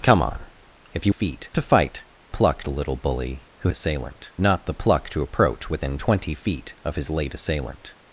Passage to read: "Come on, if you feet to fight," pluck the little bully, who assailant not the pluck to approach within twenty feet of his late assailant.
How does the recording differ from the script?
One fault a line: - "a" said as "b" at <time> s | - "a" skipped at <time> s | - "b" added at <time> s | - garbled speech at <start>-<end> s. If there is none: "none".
none